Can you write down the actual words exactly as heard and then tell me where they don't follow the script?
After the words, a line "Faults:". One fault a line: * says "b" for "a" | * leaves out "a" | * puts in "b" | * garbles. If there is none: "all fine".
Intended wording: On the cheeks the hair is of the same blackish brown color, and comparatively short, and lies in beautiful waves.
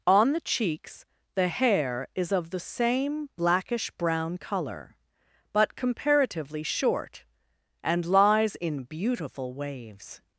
On the cheeks the hair is of the same blackish brown color, but comparatively short, and lies in beautiful waves.
Faults:
* says "but" for "and"